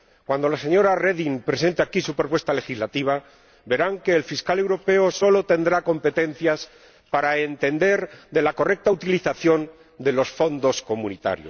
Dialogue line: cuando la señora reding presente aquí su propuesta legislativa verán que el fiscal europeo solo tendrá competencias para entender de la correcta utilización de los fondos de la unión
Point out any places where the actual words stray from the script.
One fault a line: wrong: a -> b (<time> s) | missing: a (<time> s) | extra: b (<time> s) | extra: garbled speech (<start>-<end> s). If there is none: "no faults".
no faults